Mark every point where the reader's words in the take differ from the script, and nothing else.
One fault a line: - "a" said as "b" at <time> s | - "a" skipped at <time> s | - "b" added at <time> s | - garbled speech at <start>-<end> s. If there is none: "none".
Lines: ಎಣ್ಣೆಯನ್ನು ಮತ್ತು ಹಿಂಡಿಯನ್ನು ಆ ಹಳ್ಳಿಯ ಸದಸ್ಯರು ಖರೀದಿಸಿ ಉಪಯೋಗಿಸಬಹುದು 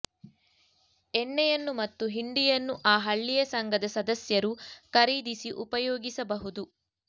- "ಸಂಘದ" added at 3.5 s